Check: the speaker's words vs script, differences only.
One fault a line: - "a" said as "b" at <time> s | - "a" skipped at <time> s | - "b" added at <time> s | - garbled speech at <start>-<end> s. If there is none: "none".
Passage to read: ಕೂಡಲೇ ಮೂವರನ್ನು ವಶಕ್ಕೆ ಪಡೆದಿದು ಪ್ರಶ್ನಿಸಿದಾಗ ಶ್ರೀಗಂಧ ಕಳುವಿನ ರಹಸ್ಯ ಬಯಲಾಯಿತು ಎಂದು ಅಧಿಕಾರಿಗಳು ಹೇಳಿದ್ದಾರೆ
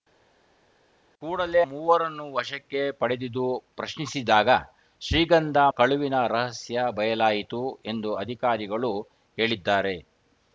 none